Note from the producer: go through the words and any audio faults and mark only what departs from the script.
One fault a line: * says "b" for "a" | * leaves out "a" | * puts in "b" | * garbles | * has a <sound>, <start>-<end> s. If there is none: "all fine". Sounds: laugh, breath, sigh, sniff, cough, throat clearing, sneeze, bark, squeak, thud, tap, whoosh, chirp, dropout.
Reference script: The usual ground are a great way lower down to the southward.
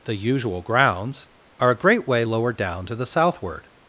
* says "grounds" for "ground"